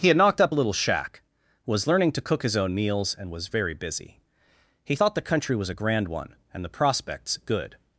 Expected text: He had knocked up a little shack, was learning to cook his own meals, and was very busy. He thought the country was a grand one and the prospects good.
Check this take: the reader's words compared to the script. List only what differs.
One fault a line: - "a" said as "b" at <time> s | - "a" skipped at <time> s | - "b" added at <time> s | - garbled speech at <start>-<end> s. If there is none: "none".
none